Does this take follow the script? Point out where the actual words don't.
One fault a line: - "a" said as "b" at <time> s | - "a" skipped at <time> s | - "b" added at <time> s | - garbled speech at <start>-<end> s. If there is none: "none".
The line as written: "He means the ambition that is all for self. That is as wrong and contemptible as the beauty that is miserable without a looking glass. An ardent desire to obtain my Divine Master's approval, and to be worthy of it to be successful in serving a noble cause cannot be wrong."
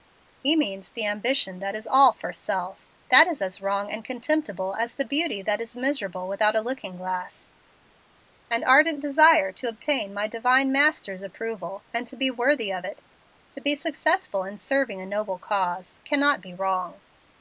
none